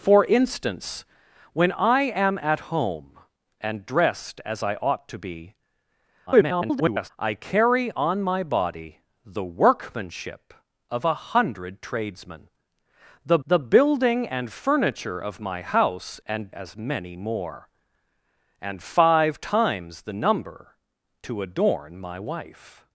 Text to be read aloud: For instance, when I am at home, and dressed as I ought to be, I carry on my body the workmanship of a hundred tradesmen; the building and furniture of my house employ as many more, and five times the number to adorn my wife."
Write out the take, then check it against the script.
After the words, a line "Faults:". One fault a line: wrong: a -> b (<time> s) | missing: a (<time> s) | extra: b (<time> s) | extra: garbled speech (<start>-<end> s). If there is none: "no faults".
For instance, when I am at home, and dressed as I ought to be, [garbled] I carry on my body the workmanship of a hundred tradesmen; the the building and furniture of my house and as many more, and five times the number to adorn my wife."
Faults:
extra: garbled speech (6.3-7.1 s)
extra: the (13.5 s)
wrong: employ -> and (16.2 s)